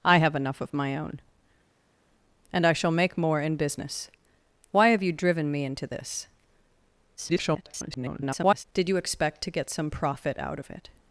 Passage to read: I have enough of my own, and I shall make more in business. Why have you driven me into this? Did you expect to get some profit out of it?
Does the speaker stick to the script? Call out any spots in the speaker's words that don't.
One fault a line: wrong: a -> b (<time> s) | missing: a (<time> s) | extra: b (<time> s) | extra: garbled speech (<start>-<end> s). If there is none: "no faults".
extra: garbled speech (7.2-8.6 s)